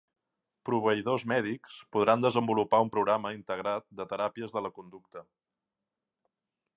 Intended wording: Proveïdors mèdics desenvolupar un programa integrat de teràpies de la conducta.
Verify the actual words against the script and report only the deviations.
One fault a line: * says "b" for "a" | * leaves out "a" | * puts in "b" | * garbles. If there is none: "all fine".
* puts in "podran"